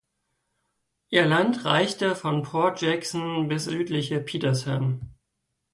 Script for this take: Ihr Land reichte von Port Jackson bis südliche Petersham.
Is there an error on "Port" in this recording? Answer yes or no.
no